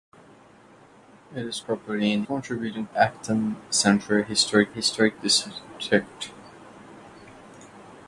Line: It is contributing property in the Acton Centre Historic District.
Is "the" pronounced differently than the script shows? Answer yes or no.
yes